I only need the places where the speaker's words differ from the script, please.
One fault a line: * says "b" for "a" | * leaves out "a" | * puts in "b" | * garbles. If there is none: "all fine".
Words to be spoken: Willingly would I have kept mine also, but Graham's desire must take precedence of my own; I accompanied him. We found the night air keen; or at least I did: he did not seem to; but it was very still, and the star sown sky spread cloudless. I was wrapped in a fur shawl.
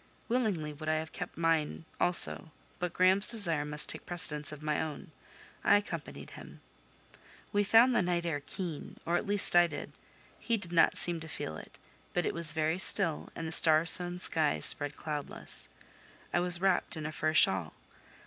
* puts in "feel it"